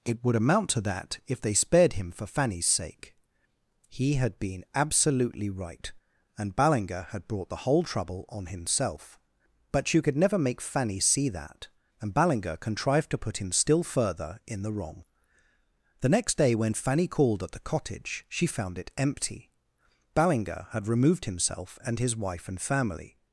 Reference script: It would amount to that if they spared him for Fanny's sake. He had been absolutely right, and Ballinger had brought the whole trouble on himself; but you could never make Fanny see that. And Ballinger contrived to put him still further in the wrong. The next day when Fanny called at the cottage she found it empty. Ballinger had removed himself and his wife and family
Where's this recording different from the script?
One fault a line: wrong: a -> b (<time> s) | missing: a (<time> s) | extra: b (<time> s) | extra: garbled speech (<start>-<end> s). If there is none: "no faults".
no faults